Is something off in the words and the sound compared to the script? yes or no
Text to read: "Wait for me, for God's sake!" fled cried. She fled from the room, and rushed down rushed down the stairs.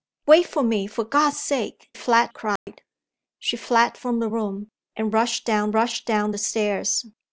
yes